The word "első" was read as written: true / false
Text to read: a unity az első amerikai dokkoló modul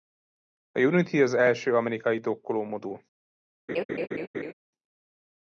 true